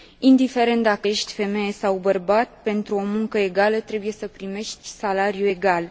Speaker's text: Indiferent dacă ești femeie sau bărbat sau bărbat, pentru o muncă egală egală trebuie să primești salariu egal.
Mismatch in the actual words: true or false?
true